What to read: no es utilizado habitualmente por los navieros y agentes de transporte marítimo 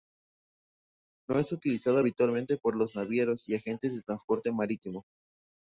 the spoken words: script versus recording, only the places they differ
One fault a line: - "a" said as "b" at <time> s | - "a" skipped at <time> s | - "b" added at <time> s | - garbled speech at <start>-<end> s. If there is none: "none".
none